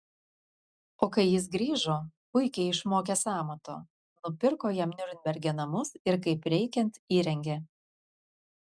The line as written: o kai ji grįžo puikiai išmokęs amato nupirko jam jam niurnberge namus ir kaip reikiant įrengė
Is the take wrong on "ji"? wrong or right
wrong